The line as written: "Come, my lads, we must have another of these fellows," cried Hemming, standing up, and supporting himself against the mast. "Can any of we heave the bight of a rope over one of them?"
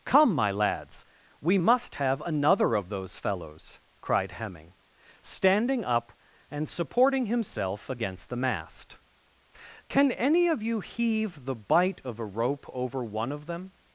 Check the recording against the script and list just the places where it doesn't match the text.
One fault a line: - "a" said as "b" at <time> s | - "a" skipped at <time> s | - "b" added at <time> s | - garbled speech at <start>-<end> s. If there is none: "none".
- "these" said as "those" at 2.9 s
- "we" said as "you" at 10.6 s